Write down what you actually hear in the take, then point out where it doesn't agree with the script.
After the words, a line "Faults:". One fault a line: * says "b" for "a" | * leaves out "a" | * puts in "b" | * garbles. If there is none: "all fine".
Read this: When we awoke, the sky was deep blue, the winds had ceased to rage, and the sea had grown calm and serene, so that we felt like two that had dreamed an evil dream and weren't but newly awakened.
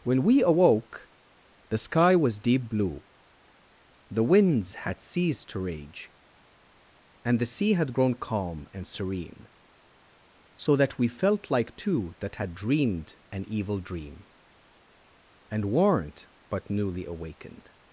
When we awoke, the sky was deep blue, the winds had ceased to rage, and the sea had grown calm and serene, so that we felt like two that had dreamed an evil dream and weren't but newly awakened.
Faults:
all fine